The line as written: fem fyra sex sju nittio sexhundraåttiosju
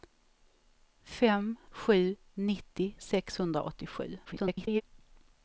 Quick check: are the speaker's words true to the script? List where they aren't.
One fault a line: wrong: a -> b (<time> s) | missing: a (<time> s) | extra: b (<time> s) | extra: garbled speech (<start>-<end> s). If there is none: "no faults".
missing: fyra sex (1.6 s)
extra: garbled speech (4.3-4.8 s)